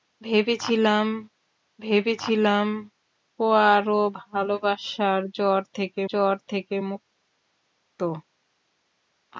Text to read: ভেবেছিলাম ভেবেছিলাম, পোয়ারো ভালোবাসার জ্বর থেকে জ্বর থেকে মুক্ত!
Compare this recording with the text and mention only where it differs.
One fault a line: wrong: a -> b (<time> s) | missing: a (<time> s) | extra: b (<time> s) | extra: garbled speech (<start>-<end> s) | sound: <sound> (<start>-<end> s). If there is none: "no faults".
no faults